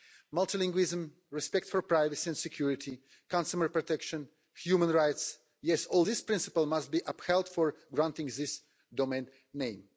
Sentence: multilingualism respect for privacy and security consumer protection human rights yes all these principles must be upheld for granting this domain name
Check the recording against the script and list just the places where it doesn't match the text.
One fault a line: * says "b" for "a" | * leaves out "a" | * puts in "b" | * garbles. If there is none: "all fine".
all fine